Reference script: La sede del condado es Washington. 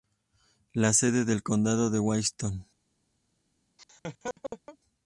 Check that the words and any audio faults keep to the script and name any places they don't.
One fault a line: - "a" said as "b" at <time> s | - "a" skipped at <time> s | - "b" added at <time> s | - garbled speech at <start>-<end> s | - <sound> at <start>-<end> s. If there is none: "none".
- laugh at 3.8-4.8 s